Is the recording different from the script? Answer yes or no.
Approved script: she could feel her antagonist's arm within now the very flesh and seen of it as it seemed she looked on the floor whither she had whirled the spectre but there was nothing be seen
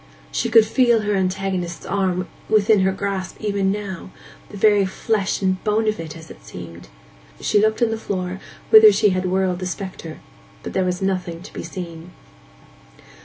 yes